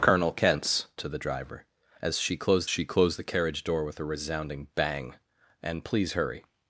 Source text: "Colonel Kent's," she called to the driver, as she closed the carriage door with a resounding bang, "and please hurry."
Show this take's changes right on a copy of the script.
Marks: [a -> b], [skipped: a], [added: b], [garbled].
"Colonel Kent's," [skipped: she called] to the driver, as she closed [added: she closed] the carriage door with a resounding bang, "and please hurry."